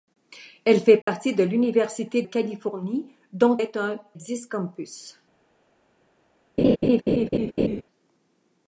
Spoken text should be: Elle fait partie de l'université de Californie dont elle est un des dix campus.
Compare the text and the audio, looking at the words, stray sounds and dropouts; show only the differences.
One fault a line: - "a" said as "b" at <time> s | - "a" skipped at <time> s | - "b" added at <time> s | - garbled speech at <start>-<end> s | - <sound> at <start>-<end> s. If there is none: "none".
- dropout at 1.0-1.1 s
- "de" skipped at 2.2 s
- "elle" skipped at 3.6 s
- "des" skipped at 4.0 s
- laugh at 6.6-7.8 s